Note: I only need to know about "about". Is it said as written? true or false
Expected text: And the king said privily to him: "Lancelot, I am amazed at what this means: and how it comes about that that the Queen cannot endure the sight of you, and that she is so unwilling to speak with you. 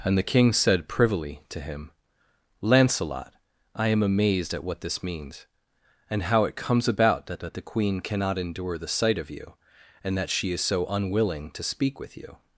true